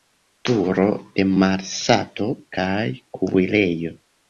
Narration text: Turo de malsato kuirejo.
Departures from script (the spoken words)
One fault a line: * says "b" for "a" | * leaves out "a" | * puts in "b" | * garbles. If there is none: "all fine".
* puts in "kaj"